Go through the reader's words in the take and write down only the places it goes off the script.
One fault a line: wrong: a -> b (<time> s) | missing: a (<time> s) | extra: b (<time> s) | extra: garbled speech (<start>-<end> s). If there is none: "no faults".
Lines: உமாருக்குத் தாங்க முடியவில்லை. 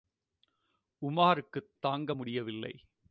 no faults